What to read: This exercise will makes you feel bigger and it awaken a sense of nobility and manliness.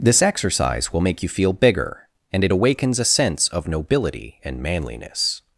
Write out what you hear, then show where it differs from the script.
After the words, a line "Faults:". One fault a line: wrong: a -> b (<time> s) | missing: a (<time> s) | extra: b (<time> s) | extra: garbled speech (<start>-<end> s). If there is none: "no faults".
This exercise will make you feel bigger and it awakens a sense of nobility and manliness.
Faults:
wrong: makes -> make (1.0 s)
wrong: awaken -> awakens (2.5 s)